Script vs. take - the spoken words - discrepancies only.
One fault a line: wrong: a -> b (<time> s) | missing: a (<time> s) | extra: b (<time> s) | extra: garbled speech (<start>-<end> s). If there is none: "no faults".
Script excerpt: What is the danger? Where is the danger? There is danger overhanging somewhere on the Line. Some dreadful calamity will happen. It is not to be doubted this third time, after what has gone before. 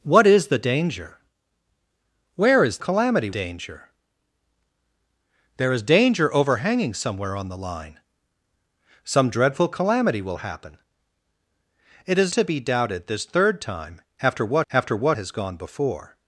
wrong: the -> calamity (2.8 s)
missing: not (12.3 s)
extra: after what (14.7 s)